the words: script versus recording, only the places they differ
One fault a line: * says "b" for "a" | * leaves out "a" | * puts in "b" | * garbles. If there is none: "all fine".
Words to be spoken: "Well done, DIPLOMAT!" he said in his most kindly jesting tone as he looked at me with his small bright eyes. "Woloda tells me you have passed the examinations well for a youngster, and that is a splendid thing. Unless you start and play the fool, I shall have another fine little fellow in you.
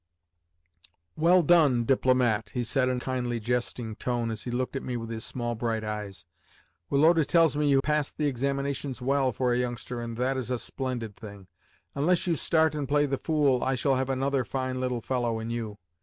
* leaves out "his most"
* leaves out "have"